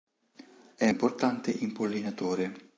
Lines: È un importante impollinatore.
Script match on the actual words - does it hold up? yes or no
no